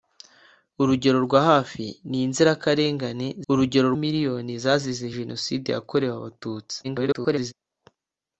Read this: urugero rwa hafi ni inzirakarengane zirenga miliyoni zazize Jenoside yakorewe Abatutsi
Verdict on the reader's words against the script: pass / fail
fail